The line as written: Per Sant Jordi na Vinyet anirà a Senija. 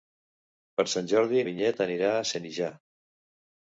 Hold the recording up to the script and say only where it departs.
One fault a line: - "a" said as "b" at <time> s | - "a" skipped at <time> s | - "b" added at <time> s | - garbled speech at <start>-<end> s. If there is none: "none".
- "na" skipped at 1.4 s